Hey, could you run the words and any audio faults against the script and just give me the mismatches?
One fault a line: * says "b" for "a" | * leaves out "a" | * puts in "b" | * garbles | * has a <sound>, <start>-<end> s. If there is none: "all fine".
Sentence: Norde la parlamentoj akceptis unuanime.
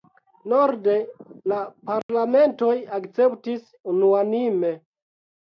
* has a dropout, 2.0-2.1 s